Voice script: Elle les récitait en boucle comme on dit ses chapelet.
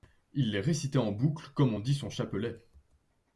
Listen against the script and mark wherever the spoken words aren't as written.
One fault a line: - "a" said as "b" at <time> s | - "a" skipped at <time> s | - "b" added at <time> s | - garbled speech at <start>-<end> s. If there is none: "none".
- "Elle" said as "Il" at 0.3 s
- "ses" said as "son" at 1.9 s